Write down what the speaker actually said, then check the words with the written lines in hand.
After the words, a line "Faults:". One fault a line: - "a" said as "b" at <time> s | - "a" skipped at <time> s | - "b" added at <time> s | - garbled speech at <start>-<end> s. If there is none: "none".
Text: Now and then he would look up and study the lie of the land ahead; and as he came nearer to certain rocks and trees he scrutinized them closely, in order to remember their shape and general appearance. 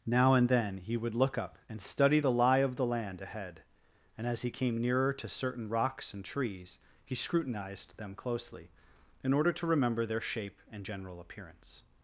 Now and then he would look up and study the lie of the land ahead; and as he came nearer to certain rocks and trees he scrutinized them closely, in order to remember their shape and general appearance.
Faults:
none